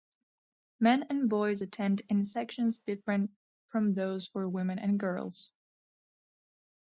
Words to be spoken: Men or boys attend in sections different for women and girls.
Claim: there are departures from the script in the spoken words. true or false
true